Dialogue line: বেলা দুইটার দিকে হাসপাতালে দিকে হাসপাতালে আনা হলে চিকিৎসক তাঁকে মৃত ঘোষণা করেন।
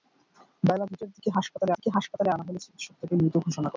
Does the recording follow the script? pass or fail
pass